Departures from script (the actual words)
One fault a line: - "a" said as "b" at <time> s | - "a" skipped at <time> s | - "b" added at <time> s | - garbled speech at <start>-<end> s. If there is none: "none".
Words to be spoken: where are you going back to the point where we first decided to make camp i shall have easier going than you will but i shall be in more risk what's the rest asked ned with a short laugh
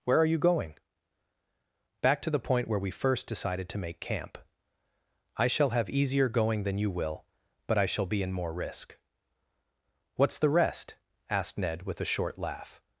none